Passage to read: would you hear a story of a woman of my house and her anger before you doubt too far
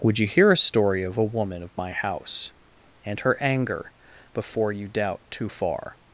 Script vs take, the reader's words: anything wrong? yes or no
no